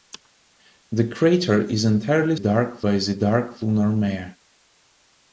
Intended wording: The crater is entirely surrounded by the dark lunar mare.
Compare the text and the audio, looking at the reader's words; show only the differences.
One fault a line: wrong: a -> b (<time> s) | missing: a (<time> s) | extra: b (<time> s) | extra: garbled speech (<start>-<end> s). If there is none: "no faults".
wrong: surrounded -> dark (2.4 s)